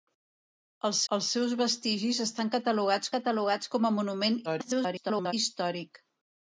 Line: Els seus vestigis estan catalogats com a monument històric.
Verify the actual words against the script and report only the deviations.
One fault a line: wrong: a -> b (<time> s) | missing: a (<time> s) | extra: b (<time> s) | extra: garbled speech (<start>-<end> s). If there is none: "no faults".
extra: els (1.1 s)
extra: catalogats (3.2 s)
extra: garbled speech (4.4-5.3 s)